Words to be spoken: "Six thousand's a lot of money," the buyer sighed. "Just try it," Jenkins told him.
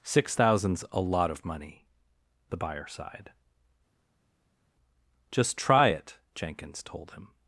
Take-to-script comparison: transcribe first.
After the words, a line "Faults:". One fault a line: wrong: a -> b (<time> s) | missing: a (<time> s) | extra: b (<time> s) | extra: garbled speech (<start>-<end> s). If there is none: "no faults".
"Six thousand's a lot of money," the buyer sighed. "Just try it," Jenkins told him.
Faults:
no faults